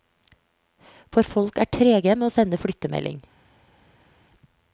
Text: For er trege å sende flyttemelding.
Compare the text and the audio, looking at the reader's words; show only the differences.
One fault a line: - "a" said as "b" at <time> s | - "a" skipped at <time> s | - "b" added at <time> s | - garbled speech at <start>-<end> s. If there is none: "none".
- "folk" added at 1.3 s
- "med" added at 2.2 s